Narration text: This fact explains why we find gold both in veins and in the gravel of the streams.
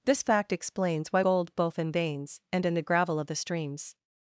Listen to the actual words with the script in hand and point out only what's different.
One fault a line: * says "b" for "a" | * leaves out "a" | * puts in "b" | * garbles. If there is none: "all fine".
* leaves out "we find"